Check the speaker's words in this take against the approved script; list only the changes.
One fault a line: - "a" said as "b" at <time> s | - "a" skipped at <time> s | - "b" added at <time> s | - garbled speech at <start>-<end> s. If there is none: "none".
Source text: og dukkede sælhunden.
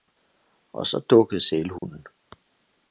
- "så" added at 0.9 s